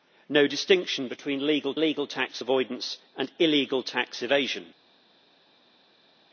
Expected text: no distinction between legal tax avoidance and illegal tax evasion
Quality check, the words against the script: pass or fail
fail